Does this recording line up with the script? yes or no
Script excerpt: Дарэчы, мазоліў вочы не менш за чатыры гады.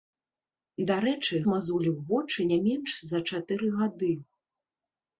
yes